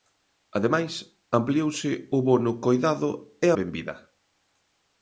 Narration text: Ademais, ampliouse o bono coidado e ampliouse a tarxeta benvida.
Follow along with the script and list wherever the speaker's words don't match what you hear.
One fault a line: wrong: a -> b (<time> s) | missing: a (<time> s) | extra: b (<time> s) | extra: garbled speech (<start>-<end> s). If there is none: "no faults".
missing: ampliouse a tarxeta (3.5 s)